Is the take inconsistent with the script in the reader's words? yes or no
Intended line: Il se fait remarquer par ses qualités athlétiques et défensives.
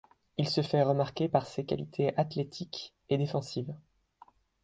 no